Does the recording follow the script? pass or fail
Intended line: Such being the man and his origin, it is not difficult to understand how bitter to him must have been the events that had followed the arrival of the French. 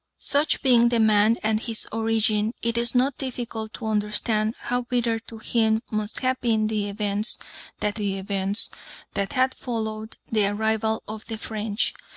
fail